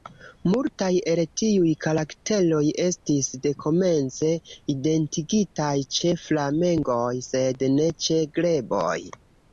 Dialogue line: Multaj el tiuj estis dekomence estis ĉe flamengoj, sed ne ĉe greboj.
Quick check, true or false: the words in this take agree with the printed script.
false